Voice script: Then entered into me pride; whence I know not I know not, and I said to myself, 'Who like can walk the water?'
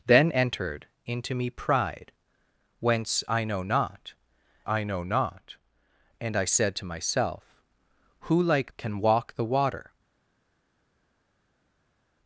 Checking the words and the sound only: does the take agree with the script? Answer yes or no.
yes